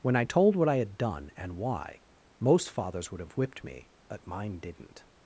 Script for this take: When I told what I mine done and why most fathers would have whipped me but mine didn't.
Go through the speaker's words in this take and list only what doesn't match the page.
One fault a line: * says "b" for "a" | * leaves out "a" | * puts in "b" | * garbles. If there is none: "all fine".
* says "had" for "mine"